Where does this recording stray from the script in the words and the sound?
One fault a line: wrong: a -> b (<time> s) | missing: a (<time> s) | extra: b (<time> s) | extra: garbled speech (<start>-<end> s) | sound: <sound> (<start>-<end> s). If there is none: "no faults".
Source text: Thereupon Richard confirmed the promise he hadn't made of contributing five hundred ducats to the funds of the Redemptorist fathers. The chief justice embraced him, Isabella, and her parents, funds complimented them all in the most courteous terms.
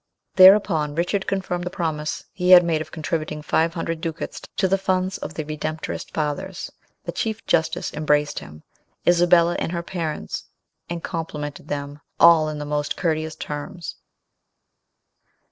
wrong: hadn't -> had (2.5 s)
wrong: funds -> and (10.9 s)